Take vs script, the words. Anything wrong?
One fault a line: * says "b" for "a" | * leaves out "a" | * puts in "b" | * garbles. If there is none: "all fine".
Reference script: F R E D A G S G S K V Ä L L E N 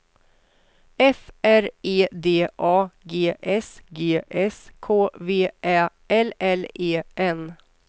all fine